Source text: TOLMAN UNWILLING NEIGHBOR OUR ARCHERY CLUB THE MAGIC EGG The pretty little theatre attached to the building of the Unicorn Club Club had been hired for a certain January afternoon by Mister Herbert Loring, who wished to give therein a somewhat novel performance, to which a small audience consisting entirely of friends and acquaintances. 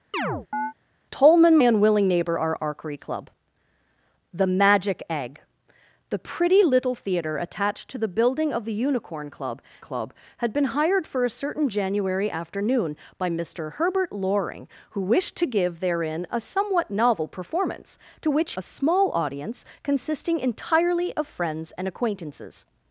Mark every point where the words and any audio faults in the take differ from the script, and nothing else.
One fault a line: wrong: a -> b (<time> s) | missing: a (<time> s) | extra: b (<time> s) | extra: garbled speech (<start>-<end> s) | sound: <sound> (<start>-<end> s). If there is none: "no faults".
sound: chirp (0.1-0.7 s)